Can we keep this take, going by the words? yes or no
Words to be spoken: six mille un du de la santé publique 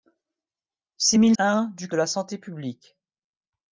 yes